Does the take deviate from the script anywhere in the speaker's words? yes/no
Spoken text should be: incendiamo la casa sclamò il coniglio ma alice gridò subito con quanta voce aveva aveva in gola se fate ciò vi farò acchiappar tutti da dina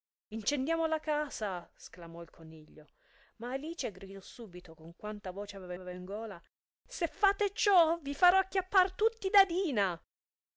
no